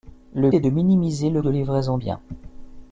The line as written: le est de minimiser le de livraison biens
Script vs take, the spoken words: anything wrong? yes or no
no